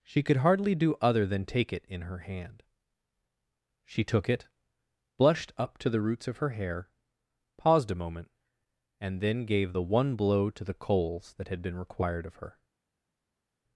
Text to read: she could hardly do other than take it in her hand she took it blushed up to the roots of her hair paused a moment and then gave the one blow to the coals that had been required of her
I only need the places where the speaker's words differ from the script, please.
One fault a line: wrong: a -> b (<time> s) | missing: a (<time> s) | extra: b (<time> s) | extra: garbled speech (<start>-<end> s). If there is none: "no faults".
no faults